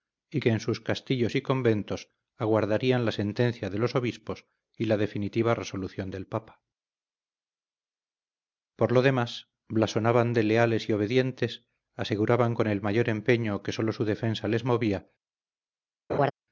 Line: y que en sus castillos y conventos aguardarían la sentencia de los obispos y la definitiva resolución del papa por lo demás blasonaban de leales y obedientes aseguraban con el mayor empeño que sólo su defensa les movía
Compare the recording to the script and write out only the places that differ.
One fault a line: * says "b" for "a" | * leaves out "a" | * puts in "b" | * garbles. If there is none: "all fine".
all fine